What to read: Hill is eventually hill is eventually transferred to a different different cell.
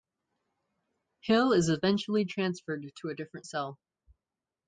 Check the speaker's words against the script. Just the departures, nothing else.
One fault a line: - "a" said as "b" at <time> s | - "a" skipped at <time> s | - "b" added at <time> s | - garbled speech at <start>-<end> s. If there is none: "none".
- "hill is eventually" skipped at 2.2 s
- "different" skipped at 3.5 s